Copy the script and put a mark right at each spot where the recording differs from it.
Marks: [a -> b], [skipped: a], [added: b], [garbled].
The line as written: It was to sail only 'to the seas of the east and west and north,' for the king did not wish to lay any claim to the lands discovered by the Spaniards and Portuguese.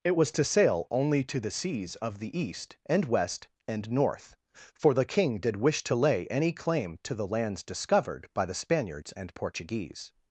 It was to sail only 'to the seas of the east and west and north,' for the king did [skipped: not] wish to lay any claim to the lands discovered by the Spaniards and Portuguese.